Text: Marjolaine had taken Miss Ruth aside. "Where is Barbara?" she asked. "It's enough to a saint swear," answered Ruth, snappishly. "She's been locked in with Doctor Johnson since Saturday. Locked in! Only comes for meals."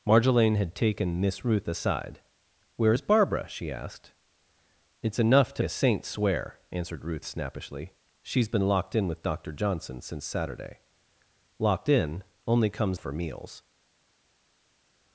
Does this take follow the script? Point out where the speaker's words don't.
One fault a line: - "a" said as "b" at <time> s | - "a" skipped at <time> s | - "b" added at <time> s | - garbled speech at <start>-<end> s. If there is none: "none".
none